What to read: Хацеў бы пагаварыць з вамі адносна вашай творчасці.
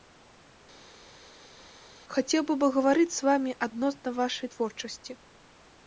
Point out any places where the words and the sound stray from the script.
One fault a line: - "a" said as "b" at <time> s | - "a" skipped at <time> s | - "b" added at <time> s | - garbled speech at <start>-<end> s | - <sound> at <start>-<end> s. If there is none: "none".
none